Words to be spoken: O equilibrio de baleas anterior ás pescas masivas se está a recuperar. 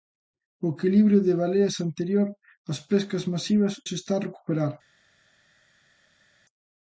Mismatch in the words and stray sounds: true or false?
false